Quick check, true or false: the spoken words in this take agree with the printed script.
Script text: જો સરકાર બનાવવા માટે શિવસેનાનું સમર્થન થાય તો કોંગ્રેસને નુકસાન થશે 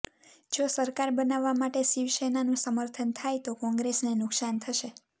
true